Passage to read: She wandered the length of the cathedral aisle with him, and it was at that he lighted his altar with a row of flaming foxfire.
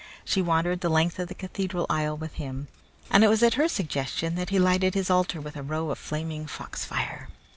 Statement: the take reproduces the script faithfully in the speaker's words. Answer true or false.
false